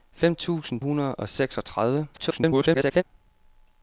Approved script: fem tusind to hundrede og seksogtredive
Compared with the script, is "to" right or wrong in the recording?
wrong